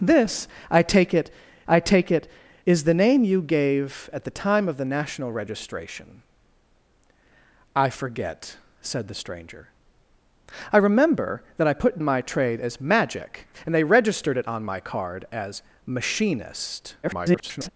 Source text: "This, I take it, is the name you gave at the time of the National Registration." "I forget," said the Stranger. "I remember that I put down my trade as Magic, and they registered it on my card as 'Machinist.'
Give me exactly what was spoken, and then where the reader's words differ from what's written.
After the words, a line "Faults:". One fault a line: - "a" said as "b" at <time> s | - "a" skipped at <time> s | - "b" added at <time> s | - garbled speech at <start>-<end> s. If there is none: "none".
"This, I take it I take it, is the name you gave at the time of the National Registration." "I forget," said the Stranger. "I remember that I put my trade as Magic, and they registered it on my card as 'Machinist.' [garbled]
Faults:
- "I take it" added at 1.7 s
- "down" skipped at 12.0 s
- garbled speech at 17.0-17.7 s